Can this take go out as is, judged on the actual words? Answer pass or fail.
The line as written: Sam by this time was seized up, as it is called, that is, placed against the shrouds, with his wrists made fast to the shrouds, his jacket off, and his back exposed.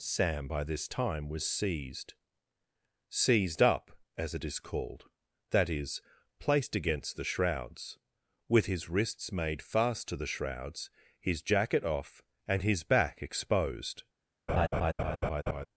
fail